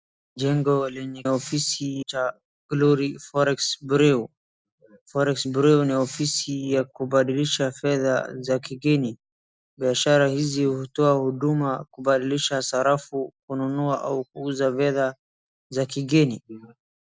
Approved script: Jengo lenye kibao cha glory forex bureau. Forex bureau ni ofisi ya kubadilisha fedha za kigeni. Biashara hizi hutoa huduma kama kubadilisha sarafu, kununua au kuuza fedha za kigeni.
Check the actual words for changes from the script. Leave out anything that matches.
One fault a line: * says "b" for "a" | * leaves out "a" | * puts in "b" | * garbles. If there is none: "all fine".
* says "ofisi" for "kibao"
* leaves out "kama"